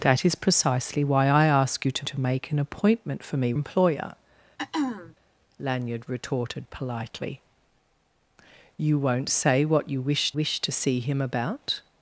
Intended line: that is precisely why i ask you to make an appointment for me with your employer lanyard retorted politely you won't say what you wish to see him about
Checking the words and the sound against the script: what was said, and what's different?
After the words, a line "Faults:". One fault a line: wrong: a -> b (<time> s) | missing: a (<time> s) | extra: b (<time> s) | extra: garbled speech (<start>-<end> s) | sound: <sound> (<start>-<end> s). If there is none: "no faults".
that is precisely why i ask you to to make an appointment for me employer lanyard retorted politely you won't say what you wish wish to see him about
Faults:
extra: to (2.0 s)
missing: with your (3.5 s)
sound: throat clearing (4.6-5.2 s)
extra: wish (10.3 s)